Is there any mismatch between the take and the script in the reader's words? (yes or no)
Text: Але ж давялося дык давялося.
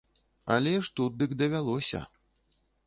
yes